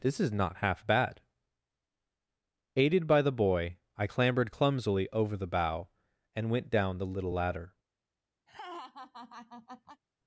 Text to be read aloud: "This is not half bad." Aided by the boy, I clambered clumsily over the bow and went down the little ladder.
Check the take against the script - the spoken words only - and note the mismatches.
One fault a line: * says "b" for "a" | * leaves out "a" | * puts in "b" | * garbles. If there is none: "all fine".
all fine